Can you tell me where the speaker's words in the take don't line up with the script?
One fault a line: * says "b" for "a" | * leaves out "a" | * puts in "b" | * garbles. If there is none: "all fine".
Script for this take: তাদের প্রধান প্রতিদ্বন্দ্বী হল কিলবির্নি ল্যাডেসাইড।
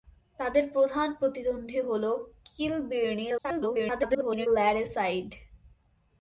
* garbles